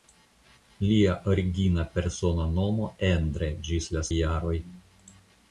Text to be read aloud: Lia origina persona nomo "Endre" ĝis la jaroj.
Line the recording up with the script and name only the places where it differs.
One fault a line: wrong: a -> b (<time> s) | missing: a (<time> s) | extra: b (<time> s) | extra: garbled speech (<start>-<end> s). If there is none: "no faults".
no faults